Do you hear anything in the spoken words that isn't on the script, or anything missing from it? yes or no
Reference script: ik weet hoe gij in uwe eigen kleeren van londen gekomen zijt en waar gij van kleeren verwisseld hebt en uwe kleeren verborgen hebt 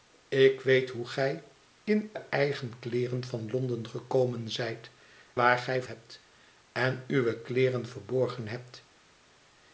yes